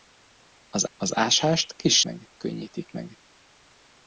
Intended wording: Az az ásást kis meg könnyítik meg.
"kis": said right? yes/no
yes